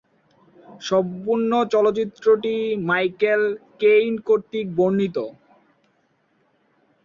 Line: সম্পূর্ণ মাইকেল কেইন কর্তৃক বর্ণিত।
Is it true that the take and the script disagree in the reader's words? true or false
true